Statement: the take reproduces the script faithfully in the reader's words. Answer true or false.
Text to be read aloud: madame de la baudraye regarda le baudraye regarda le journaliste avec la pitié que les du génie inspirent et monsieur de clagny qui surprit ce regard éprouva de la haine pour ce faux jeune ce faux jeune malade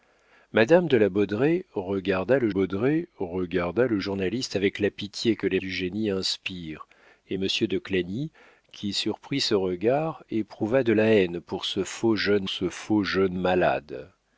true